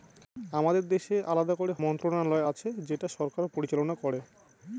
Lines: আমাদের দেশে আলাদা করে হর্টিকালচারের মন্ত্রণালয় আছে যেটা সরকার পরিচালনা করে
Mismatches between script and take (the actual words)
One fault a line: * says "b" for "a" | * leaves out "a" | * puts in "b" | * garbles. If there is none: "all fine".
* leaves out "হর্টিকালচারের"